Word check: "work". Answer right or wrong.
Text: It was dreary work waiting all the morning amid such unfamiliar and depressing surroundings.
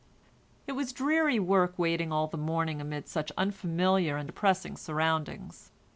right